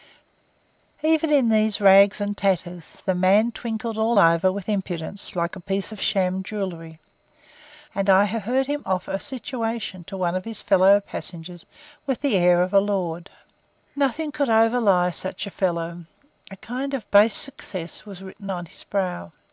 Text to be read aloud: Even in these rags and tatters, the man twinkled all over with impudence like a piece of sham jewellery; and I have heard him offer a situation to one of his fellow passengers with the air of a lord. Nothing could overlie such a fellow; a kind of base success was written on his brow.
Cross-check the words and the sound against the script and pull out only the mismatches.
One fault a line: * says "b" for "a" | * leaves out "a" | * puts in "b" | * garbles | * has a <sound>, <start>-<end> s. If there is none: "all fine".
all fine